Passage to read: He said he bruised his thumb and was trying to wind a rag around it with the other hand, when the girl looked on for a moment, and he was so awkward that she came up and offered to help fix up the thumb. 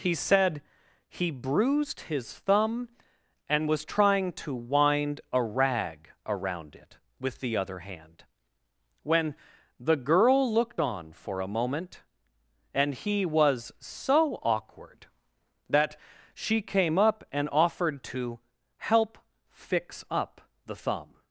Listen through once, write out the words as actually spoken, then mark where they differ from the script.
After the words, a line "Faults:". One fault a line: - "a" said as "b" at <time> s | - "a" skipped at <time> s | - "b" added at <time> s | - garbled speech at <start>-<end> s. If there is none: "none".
He said he bruised his thumb and was trying to wind a rag around it with the other hand, when the girl looked on for a moment, and he was so awkward that she came up and offered to help fix up the thumb.
Faults:
none